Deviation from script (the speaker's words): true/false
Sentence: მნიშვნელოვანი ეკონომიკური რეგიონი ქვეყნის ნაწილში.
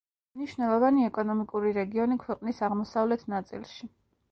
true